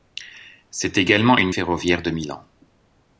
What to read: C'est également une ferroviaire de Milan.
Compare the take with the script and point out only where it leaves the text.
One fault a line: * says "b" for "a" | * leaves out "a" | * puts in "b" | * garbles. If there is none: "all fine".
all fine